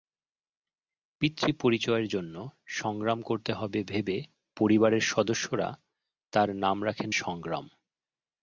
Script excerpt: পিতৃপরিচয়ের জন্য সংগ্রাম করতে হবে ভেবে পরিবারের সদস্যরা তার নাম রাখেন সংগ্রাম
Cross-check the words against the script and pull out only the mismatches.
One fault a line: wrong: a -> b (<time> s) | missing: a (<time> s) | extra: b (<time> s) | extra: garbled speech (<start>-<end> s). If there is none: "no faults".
no faults